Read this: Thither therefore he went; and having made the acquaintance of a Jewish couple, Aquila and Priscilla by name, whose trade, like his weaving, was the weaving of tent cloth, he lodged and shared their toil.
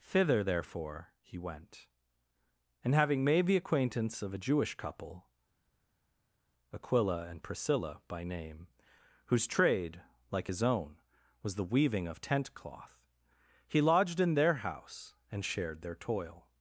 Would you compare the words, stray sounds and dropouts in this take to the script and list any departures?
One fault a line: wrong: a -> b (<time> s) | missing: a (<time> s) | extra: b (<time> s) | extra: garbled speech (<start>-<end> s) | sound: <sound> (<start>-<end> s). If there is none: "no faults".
wrong: weaving -> own (10.6 s)
extra: in their house (14.2 s)